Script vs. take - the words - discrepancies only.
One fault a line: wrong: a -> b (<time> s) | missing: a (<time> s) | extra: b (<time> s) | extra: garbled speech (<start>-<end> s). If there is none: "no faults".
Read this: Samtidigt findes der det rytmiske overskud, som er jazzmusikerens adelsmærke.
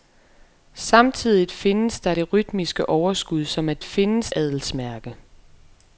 wrong: jazzmusikerens -> findes (3.8 s)